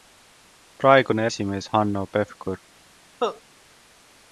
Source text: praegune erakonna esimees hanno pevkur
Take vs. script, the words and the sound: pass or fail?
fail